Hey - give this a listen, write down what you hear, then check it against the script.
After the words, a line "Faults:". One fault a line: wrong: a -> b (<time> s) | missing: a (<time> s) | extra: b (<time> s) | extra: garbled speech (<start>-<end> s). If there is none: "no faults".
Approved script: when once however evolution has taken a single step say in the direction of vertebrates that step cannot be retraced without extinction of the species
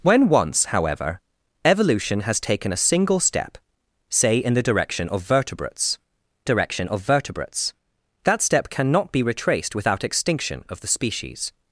when once however evolution has taken a single step say in the direction of vertebrates direction of vertebrates that step cannot be retraced without extinction of the species
Faults:
extra: direction of vertebrates (6.4 s)